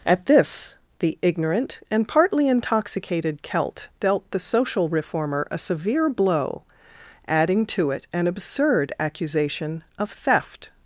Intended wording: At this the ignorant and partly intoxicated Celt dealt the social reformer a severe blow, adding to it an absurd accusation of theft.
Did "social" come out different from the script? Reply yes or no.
no